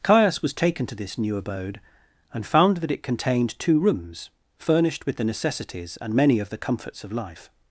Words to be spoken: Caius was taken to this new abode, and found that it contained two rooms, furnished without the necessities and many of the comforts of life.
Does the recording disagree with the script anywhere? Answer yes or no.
yes